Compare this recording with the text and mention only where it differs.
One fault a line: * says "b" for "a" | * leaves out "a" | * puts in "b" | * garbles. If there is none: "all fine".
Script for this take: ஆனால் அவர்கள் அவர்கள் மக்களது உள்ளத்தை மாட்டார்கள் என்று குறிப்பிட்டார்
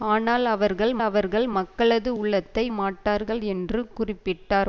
all fine